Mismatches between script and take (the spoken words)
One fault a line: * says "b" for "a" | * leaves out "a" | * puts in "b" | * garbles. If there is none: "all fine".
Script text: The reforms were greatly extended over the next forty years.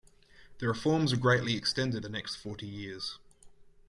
* leaves out "over"